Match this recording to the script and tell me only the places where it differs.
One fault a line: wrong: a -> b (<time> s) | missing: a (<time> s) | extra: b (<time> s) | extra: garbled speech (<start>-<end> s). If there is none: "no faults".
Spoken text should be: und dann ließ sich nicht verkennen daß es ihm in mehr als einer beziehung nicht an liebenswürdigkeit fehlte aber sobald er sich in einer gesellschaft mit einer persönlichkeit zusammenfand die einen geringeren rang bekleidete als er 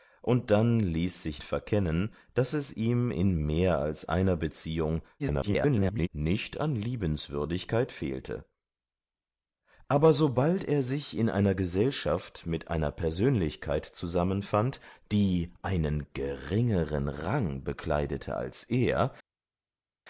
missing: nicht (1.4 s)
extra: garbled speech (5.2-6.1 s)